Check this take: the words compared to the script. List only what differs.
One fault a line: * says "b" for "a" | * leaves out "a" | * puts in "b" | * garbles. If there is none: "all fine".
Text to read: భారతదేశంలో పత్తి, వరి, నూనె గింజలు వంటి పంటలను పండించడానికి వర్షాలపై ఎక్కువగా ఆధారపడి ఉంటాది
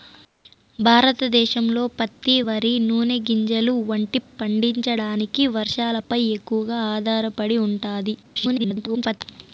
* leaves out "పంటలను"
* garbles